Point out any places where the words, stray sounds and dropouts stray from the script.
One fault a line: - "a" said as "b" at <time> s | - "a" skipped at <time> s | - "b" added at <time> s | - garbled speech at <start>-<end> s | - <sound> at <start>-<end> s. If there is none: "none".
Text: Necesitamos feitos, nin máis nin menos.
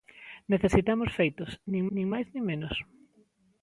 - "nin" added at 1.9 s